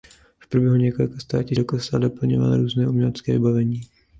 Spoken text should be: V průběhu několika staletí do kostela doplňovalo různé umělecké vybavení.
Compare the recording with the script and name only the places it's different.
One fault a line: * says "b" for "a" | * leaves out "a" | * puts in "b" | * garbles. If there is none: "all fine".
all fine